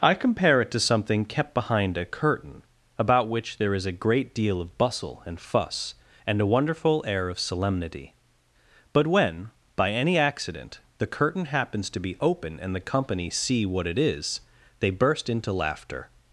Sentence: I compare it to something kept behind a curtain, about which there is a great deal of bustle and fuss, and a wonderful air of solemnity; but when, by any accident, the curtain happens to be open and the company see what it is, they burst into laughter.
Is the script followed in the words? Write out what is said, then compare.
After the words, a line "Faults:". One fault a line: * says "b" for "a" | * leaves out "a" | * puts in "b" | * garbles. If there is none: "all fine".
I compare it to something kept behind a curtain, about which there is a great deal of bustle and fuss, and a wonderful air of solemnity; but when, by any accident, the curtain happens to be open and the company see what it is, they burst into laughter.
Faults:
all fine